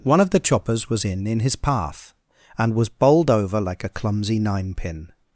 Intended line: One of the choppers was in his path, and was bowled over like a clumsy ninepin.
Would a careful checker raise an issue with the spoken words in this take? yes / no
yes